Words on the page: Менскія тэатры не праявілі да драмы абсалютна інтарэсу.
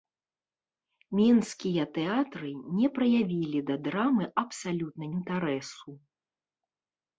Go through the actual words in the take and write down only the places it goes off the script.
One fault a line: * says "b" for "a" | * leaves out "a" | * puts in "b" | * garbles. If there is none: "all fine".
all fine